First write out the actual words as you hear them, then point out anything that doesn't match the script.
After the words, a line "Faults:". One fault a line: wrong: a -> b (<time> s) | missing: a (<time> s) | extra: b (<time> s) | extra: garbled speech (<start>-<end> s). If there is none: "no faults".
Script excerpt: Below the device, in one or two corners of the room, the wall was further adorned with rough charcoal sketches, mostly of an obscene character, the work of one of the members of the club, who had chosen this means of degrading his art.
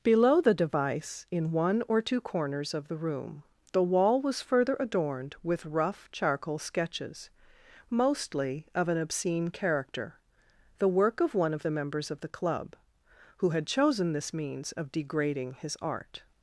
Below the device, in one or two corners of the room, the wall was further adorned with rough charcoal sketches, mostly of an obscene character, the work of one of the members of the club, who had chosen this means of degrading his art.
Faults:
no faults